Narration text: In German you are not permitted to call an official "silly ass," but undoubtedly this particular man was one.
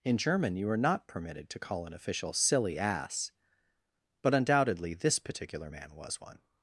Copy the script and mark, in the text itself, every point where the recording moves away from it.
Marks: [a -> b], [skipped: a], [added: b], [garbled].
In German you are not permitted to call an official "silly ass," but undoubtedly this particular man was one.